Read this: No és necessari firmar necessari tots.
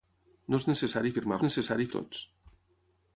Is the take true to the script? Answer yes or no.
yes